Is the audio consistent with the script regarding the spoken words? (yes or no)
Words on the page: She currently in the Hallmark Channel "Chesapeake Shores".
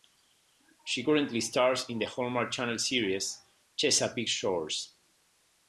no